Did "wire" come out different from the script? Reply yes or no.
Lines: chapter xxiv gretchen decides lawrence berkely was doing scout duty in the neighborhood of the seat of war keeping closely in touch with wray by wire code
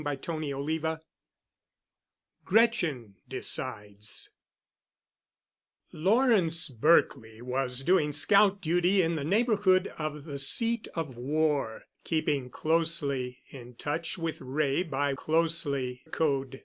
yes